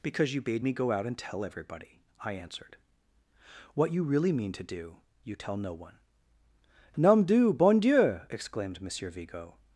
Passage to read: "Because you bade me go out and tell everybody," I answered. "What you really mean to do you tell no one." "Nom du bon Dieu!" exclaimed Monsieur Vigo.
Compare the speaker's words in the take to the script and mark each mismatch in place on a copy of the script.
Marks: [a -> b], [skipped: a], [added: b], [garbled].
"Because you bade me go out and tell everybody," I answered. "What you really mean to do you tell no one." "Nom du bon Dieu!" exclaimed Monsieur Vigo.